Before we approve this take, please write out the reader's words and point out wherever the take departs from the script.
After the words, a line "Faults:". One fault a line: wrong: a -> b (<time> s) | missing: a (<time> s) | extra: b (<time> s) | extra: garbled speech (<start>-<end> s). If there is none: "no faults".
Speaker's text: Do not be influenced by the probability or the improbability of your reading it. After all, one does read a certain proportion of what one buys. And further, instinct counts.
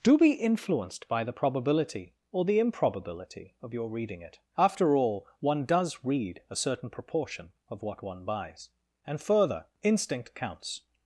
Do be influenced by the probability or the improbability of your reading it. After all, one does read a certain proportion of what one buys. And further, instinct counts.
Faults:
missing: not (0.2 s)